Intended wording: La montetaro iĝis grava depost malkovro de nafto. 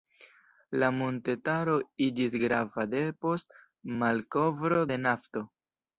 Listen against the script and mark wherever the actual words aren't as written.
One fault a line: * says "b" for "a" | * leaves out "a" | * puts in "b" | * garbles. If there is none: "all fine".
all fine